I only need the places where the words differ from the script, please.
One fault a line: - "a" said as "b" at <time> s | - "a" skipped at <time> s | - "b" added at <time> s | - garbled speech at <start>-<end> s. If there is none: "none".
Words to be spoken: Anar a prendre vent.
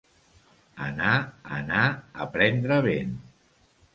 - "anar" added at 1.6 s